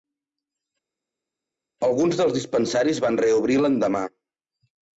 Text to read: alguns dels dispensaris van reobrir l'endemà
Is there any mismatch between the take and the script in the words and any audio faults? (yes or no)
no